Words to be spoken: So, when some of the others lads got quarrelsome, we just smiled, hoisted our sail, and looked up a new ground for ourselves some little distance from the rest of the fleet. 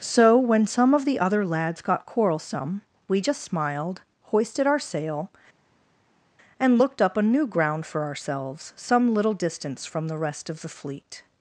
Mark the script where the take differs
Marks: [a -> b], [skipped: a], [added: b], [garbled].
So, when some of the [others -> other] lads got quarrelsome, we just smiled, hoisted our sail, and looked up a new ground for ourselves some little distance from the rest of the fleet.